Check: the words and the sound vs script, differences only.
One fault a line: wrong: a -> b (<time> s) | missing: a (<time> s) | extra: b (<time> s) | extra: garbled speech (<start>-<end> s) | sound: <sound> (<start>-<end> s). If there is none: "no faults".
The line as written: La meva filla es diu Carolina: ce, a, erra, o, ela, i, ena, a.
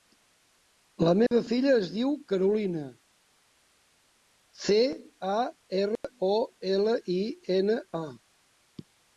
sound: dropout (1.3-1.3 s)
sound: dropout (6.0-6.0 s)